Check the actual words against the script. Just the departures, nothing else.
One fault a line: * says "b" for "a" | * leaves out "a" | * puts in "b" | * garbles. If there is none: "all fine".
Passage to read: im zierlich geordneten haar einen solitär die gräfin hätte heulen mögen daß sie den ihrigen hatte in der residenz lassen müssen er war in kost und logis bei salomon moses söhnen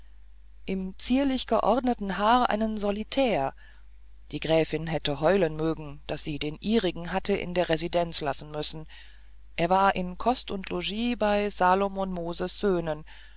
all fine